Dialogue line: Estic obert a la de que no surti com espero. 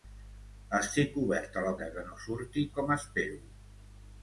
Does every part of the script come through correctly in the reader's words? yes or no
yes